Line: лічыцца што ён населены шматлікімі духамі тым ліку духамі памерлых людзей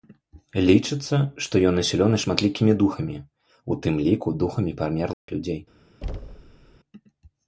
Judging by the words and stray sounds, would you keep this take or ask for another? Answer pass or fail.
fail